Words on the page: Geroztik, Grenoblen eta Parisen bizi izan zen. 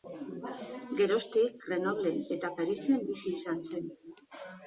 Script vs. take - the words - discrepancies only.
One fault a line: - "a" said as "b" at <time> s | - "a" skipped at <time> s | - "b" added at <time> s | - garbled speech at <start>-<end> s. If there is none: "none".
none